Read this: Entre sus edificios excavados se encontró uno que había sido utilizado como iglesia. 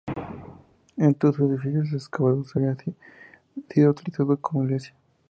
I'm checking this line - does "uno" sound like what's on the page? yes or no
no